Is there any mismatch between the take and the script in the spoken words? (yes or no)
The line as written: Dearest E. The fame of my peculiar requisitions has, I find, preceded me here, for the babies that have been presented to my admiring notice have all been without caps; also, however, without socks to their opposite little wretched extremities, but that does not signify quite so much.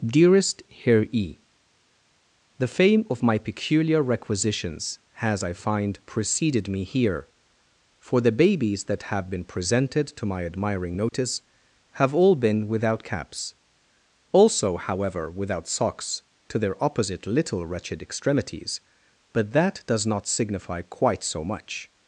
yes